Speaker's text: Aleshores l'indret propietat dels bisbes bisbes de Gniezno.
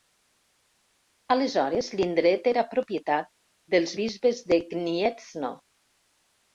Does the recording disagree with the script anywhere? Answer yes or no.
yes